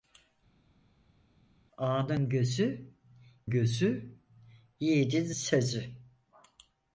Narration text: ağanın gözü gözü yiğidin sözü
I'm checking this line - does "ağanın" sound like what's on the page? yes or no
yes